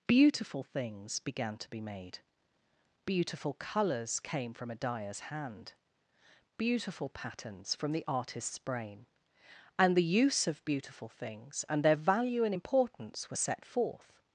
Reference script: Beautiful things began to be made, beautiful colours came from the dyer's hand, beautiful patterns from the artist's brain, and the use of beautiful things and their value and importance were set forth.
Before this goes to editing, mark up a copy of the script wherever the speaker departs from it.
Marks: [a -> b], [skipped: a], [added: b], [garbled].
Beautiful things began to be made, beautiful colours came from [the -> a] dyer's hand, beautiful patterns from the artist's brain, and the use of beautiful things and their value and importance were set forth.